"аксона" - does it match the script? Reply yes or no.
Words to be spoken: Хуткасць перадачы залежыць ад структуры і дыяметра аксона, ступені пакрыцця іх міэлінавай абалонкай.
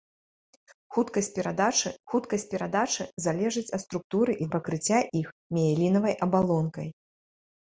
no